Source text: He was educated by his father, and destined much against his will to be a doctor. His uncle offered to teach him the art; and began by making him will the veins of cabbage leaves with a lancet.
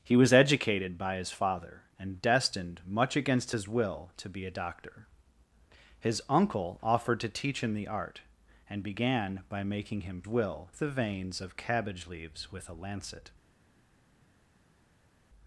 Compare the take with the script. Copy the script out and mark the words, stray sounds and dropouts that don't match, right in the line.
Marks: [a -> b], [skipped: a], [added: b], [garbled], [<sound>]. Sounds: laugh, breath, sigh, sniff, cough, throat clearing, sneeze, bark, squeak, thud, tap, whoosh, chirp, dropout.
He was educated by his father, and destined much against his will to be a doctor. His uncle offered to teach him the art; and began by making him will the veins of cabbage leaves with a lancet.